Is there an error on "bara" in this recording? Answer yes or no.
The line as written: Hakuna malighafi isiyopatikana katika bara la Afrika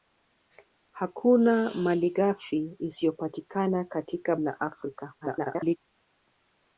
yes